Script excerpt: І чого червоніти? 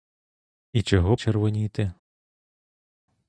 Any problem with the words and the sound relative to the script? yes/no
no